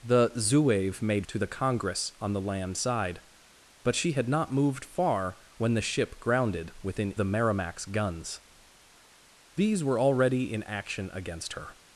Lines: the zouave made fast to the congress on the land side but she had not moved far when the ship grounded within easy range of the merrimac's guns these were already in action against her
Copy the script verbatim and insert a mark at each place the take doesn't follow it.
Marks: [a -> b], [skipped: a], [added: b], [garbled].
the zouave made [skipped: fast] to the congress on the land side but she had not moved far when the ship grounded within [skipped: easy range of] the merrimac's guns these were already in action against her